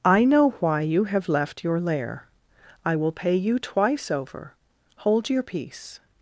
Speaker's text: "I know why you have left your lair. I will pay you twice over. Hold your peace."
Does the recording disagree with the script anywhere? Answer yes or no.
no